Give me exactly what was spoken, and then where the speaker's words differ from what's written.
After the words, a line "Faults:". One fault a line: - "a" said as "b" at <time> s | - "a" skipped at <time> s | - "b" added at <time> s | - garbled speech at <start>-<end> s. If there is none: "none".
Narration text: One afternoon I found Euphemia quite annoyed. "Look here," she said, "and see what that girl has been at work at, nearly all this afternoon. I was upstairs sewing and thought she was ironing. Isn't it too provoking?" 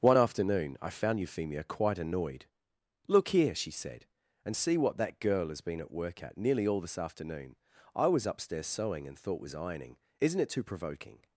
One afternoon I found Euphemia quite annoyed. "Look here," she said, "and see what that girl has been at work at, nearly all this afternoon. I was upstairs sewing and thought was ironing. Isn't it too provoking?"
Faults:
- "she" skipped at 9.4 s